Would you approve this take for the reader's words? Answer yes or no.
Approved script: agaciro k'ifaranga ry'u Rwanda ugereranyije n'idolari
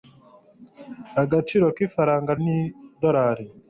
no